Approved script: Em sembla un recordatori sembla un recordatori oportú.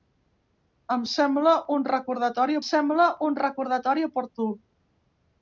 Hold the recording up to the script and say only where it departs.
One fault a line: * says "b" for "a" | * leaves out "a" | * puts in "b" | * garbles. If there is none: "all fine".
all fine